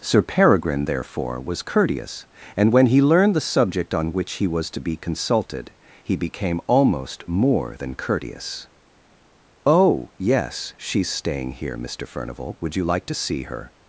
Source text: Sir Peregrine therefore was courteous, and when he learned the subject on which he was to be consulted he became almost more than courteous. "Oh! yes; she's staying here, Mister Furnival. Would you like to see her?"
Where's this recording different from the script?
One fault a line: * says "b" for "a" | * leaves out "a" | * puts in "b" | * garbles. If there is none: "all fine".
all fine